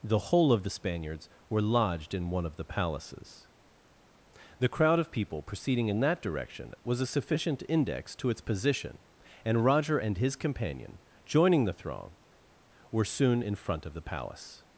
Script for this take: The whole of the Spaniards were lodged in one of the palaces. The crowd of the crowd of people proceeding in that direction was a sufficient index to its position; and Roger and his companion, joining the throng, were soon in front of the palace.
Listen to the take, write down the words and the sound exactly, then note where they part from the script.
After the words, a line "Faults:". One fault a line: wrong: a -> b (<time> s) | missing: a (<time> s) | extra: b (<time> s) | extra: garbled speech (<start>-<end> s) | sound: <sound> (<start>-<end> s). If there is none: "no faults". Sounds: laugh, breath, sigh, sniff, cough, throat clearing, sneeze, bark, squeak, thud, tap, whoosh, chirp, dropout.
The whole of the Spaniards were lodged in one of the palaces. The crowd of people proceeding in that direction was a sufficient index to its position; and Roger and his companion, joining the throng, were soon in front of the palace.
Faults:
missing: the crowd of (5.1 s)